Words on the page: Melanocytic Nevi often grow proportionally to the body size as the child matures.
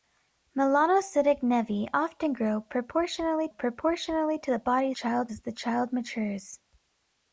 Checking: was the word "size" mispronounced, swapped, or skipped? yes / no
yes